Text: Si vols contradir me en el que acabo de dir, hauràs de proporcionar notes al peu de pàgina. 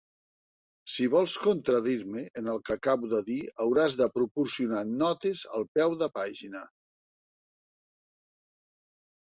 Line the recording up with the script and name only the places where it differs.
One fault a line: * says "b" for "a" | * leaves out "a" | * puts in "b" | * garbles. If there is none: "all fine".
all fine